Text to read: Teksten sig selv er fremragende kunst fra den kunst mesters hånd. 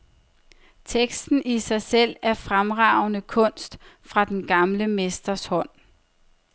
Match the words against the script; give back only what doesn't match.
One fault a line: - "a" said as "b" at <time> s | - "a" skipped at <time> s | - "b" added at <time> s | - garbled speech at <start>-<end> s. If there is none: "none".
- "i" added at 1.4 s
- "kunst" said as "gamle" at 4.5 s